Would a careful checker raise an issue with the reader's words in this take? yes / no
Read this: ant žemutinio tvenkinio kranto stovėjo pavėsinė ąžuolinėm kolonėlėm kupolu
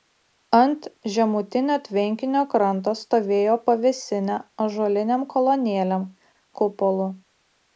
no